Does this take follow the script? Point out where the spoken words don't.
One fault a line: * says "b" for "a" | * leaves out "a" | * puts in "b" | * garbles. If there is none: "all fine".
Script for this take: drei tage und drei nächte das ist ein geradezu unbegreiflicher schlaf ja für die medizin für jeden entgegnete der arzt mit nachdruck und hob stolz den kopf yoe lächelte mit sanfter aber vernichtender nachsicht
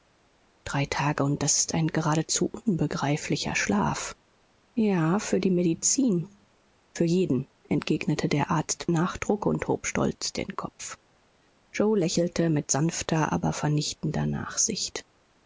* leaves out "drei nächte"
* leaves out "mit"